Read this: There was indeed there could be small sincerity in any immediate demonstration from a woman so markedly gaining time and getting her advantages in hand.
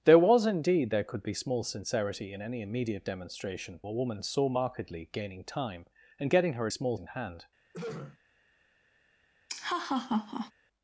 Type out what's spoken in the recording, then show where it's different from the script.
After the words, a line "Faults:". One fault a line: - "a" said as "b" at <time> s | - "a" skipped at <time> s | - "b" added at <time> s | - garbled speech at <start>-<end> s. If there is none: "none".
There was indeed there could be small sincerity in any immediate demonstration a woman so markedly gaining time and getting her small in hand.
Faults:
- "from" skipped at 3.8 s
- "advantages" said as "small" at 6.7 s